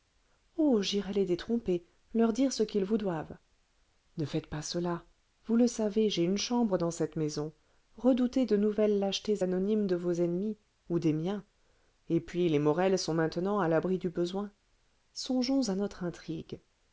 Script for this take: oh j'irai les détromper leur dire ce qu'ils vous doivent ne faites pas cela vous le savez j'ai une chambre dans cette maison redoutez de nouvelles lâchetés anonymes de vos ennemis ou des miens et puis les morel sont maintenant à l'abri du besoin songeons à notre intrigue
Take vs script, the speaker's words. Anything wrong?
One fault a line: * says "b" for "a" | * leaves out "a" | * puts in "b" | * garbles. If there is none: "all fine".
all fine